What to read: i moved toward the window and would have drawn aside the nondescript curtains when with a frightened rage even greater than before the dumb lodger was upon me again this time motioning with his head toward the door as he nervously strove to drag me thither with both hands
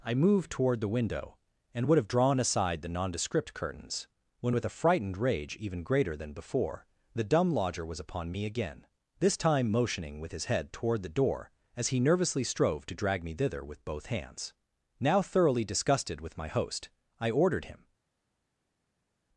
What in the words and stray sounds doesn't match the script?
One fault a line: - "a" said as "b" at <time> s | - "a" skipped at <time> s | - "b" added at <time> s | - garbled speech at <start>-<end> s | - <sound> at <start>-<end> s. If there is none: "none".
- "now thoroughly disgusted with my host i ordered him" added at 15.0 s